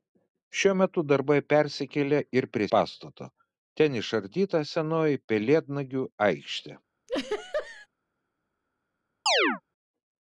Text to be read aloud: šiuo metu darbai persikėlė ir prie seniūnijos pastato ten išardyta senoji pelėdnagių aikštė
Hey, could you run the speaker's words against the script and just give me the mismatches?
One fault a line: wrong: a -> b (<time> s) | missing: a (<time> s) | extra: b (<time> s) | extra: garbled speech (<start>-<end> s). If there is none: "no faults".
missing: seniūnijos (2.7 s)